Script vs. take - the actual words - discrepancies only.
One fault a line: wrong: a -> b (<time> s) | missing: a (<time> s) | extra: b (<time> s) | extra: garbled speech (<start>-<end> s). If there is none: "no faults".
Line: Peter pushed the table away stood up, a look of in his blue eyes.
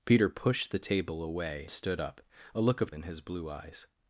no faults